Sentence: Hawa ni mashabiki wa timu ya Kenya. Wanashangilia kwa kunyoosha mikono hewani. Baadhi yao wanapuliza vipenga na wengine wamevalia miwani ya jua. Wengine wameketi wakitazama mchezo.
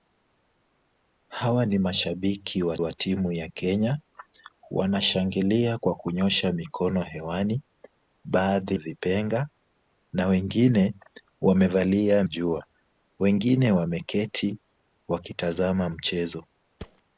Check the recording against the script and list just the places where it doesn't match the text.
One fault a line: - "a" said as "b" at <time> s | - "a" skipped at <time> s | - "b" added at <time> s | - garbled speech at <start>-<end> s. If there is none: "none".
- "wa" added at 2.8 s
- "yao wanapuliza" skipped at 8.8 s
- "miwani ya" skipped at 12.2 s